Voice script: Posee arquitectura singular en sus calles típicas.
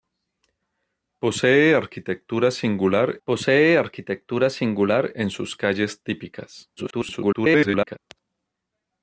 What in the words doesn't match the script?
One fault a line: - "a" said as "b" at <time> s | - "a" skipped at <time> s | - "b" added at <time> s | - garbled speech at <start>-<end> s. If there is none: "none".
- "posee arquitectura singular" added at 3.2 s
- garbled speech at 6.8-8.0 s